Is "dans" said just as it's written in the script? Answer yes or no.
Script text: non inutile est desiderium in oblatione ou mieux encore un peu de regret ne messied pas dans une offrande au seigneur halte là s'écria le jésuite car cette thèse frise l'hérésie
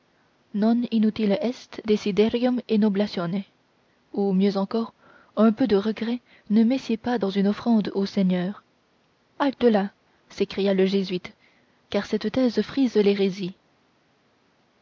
yes